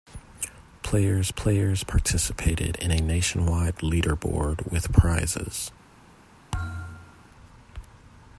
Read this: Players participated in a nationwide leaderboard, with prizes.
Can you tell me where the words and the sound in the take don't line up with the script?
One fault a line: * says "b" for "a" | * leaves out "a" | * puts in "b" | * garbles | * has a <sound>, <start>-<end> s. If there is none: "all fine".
* puts in "players"
* has a thud, 6.5-7.3 s